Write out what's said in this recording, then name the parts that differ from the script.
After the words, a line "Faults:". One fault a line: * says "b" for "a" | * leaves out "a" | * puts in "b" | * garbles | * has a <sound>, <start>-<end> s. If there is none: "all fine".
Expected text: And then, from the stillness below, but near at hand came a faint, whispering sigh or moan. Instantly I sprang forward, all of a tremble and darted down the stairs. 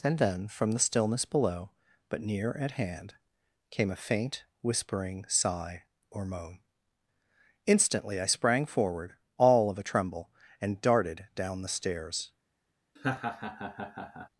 And then, from the stillness below, but near at hand came a faint, whispering sigh or moan. Instantly I sprang forward, all of a tremble and darted down the stairs.
Faults:
* has a laugh, 13.0-14.3 s